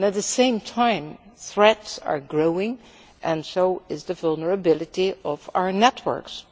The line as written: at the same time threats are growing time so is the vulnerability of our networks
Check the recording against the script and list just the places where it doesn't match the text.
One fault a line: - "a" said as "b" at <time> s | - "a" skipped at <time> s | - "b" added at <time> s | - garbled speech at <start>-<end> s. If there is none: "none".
- "time" said as "and" at 3.2 s